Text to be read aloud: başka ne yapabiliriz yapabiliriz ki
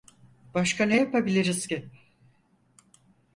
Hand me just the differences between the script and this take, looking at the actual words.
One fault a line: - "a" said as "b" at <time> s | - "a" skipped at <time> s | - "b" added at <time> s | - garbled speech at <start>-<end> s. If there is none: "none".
- "yapabiliriz" skipped at 1.7 s